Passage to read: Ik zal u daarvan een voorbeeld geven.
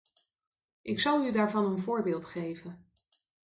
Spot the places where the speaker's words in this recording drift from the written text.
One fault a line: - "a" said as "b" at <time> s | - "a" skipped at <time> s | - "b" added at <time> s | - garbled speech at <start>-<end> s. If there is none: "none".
none